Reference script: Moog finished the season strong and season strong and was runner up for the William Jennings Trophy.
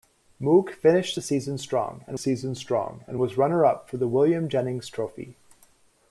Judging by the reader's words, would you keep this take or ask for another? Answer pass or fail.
pass